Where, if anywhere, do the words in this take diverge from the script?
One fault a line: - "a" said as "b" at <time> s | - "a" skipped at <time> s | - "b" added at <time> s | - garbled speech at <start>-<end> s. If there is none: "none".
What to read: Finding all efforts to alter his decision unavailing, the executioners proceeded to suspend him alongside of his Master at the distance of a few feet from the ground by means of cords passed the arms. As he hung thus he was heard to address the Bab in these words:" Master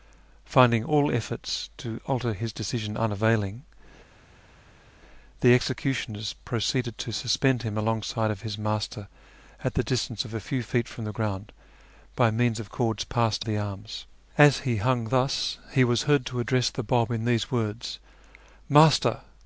none